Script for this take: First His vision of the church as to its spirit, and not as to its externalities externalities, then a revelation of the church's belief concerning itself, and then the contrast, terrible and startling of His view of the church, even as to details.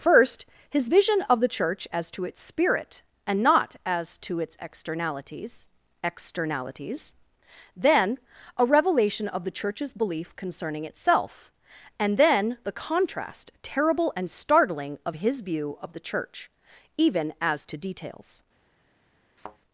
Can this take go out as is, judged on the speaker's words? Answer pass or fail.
pass